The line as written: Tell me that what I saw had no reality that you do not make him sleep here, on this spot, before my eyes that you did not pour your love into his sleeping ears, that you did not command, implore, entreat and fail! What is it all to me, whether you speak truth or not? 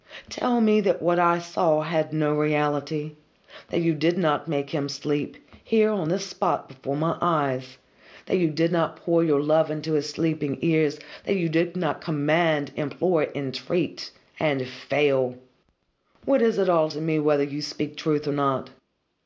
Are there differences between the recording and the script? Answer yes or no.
yes